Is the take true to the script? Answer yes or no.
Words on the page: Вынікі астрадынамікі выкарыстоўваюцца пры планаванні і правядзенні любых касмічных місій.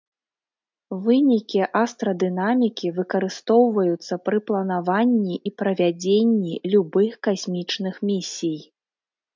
yes